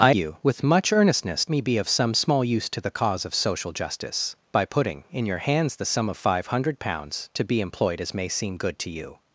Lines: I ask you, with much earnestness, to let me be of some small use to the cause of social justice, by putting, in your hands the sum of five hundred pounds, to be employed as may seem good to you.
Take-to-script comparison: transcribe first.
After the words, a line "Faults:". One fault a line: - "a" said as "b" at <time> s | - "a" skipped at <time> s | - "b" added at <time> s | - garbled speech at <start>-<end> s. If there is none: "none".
I you, with much earnestness, me be of some small use to the cause of social justice, by putting, in your hands the sum of five hundred pounds, to be employed as may seem good to you.
Faults:
- "ask" skipped at 0.1 s
- "to let" skipped at 1.5 s